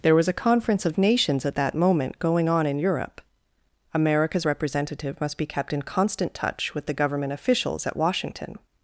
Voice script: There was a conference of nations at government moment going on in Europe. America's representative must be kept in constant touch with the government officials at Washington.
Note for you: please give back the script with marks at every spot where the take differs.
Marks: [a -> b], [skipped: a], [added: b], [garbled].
There was a conference of nations at [government -> that] moment going on in Europe. America's representative must be kept in constant touch with the government officials at Washington.